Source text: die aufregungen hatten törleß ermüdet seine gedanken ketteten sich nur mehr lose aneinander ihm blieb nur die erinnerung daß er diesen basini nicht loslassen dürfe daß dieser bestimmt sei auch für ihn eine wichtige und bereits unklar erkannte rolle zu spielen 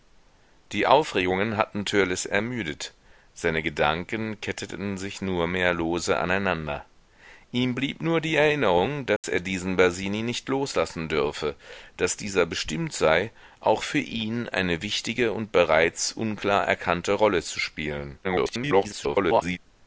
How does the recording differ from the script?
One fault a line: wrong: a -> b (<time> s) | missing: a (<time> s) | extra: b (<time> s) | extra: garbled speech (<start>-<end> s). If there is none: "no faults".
extra: garbled speech (18.2-19.6 s)